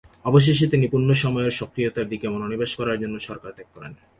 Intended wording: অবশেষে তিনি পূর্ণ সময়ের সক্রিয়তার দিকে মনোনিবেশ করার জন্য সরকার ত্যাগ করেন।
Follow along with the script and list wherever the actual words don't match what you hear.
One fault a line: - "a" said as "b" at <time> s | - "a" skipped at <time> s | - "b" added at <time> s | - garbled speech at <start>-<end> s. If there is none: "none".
none